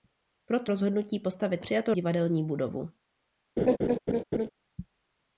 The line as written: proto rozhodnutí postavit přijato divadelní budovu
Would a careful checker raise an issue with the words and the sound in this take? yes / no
yes